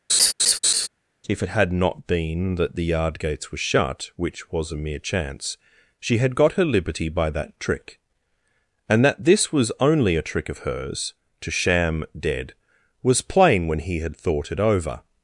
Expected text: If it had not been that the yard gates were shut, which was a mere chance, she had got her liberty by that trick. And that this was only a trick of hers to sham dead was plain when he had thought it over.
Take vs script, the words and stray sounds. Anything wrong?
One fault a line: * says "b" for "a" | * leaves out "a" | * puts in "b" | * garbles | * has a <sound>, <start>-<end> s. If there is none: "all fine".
* has a laugh, 0.1-0.9 s